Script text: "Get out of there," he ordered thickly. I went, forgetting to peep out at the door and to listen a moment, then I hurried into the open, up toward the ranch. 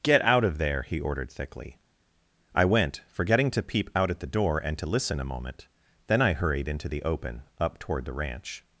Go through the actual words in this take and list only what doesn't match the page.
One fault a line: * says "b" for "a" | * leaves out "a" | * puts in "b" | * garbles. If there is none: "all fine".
all fine